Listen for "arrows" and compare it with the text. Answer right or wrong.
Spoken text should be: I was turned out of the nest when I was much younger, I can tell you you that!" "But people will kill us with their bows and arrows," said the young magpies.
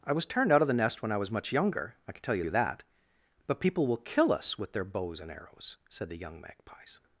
right